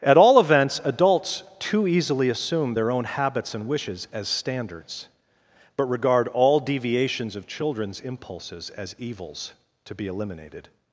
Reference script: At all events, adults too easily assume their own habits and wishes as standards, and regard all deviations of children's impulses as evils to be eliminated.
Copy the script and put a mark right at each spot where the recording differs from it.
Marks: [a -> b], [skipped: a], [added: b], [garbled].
At all events, adults too easily assume their own habits and wishes as standards, [and -> but] regard all deviations of children's impulses as evils to be eliminated.